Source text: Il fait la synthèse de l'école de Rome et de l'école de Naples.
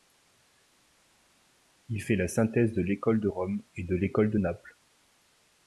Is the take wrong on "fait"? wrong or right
right